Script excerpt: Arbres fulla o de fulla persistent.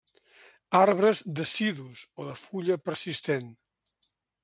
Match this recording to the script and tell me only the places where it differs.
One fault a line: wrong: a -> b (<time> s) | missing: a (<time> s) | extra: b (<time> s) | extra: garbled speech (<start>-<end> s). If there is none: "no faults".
wrong: fulla -> decidus (1.4 s)